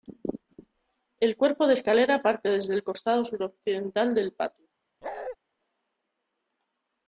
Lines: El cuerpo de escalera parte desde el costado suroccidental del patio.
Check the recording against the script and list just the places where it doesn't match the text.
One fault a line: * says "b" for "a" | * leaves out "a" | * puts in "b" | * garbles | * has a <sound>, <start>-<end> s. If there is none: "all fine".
* has a bark, 5.0-5.4 s